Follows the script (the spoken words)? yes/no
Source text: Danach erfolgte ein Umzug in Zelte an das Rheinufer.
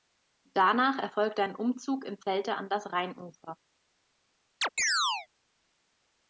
yes